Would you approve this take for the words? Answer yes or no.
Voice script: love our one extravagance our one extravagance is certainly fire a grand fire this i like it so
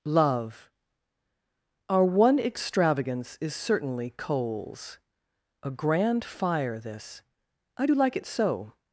no